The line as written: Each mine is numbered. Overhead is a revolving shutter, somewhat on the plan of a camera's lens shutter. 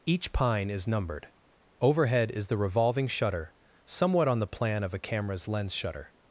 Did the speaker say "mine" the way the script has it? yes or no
no